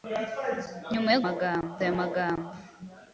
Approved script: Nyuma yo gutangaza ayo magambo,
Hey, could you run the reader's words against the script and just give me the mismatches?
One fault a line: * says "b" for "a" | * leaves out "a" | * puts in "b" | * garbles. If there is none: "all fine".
* says "magambo" for "gutangaza"